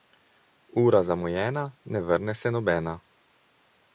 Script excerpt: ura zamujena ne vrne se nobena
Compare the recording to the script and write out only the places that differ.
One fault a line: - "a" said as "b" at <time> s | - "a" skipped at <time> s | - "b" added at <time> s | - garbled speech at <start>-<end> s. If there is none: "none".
none